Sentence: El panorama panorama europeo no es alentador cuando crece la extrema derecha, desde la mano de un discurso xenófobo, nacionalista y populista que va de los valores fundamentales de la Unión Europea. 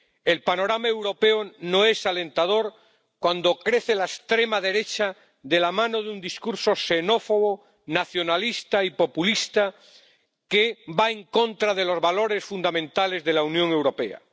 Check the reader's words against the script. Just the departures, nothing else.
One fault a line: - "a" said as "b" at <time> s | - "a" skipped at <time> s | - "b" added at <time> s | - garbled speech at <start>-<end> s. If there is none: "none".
- "panorama" skipped at 0.9 s
- "desde" said as "de" at 5.4 s
- "en contra" added at 11.1 s